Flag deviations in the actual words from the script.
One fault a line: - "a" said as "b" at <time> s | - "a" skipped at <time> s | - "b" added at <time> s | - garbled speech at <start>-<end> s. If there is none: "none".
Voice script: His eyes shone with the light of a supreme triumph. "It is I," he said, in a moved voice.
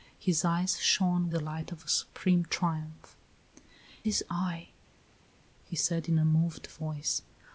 - "with" skipped at 1.3 s
- "It" skipped at 3.2 s